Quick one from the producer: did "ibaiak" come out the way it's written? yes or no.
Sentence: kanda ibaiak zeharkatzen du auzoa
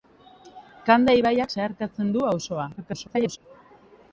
yes